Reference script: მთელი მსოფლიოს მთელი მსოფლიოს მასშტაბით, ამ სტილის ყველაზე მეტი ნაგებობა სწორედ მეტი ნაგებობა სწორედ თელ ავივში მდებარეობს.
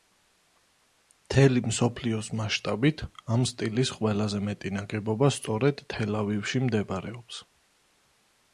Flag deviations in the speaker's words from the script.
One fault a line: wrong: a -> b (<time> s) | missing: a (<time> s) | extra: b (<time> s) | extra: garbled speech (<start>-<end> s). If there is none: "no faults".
missing: მთელი მსოფლიოს (2.3 s)
missing: მეტი ნაგებობა სწორედ (5.9 s)